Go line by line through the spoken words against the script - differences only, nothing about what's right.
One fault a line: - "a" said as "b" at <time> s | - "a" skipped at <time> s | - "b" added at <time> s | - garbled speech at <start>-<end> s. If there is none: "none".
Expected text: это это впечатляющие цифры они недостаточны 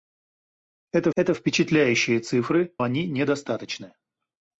none